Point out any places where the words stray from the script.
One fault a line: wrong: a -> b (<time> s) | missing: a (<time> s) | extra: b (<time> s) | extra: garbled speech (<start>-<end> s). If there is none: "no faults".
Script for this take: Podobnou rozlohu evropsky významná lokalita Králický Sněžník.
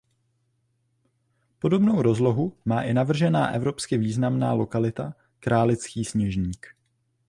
extra: má i navržená (2.6 s)